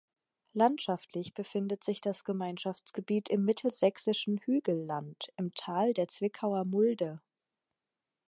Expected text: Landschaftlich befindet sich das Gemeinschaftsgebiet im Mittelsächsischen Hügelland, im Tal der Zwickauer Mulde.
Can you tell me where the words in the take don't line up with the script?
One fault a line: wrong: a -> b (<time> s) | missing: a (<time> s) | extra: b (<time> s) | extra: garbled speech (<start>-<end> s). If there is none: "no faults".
no faults